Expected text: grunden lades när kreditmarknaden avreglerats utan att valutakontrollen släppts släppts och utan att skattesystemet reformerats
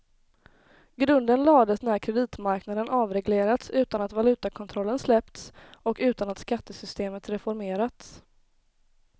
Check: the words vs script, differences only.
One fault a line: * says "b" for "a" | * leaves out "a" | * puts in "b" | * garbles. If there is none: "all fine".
* leaves out "släppts"